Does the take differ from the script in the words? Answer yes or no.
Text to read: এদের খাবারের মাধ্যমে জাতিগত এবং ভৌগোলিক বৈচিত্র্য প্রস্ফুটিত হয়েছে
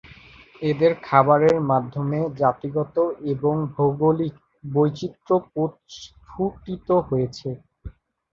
no